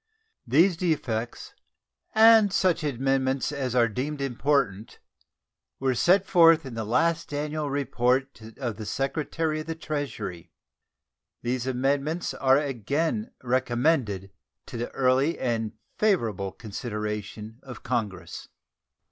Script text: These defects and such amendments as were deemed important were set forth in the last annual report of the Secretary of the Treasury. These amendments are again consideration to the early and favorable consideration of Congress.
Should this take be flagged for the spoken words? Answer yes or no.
yes